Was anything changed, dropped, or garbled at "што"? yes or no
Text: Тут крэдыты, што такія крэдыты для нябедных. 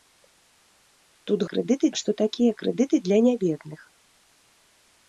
no